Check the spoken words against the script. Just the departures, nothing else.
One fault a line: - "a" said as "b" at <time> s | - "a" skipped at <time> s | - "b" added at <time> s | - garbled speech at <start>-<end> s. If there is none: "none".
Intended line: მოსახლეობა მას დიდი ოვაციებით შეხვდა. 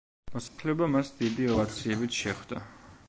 none